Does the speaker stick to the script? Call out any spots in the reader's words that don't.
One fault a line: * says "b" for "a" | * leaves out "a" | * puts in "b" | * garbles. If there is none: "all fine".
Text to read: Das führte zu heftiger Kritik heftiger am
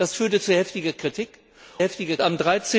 all fine